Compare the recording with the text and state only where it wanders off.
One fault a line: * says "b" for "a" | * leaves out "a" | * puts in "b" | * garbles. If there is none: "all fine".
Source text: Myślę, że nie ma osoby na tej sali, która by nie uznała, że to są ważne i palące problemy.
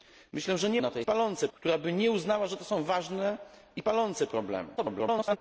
* leaves out "ma osoby"
* says "palące" for "sali"
* garbles